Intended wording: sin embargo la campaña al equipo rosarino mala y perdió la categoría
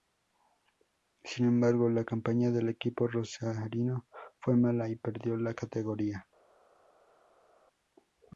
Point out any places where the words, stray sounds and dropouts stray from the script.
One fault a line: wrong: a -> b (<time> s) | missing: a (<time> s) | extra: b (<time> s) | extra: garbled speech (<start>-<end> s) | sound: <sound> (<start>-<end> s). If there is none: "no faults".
wrong: al -> del (2.5 s)
extra: fue (4.4 s)